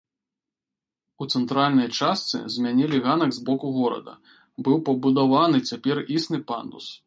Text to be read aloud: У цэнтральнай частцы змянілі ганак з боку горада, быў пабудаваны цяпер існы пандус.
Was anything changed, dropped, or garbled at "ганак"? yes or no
no